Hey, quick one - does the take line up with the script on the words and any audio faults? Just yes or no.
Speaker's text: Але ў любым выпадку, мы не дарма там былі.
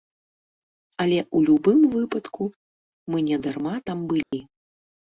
no